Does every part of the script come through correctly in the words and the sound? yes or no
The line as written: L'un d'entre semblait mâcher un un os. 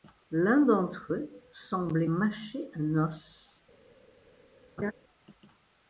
no